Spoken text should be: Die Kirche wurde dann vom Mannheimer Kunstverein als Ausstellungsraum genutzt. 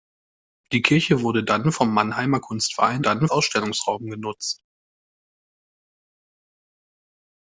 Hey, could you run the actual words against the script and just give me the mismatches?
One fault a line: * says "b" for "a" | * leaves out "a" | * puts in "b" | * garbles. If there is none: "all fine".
* says "dann" for "als"